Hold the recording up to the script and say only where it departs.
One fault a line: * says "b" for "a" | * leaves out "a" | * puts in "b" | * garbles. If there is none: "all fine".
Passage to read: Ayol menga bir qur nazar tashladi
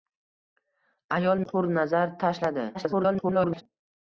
* leaves out "menga bir"
* garbles